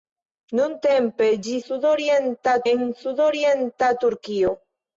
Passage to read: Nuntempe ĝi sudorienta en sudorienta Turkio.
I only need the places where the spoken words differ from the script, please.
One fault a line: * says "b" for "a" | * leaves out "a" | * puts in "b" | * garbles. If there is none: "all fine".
all fine